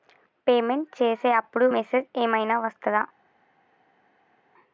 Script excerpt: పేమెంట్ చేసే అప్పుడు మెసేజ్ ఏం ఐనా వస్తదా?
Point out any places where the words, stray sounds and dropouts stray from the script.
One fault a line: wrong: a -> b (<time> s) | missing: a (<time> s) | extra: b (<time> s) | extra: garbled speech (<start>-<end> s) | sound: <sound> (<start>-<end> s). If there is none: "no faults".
no faults